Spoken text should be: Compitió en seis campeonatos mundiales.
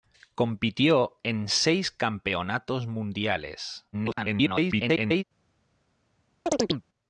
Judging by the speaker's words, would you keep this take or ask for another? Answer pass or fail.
fail